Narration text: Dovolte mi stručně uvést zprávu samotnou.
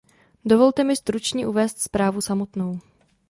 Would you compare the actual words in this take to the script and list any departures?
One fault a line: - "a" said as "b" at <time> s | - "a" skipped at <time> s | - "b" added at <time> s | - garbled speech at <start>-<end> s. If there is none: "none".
none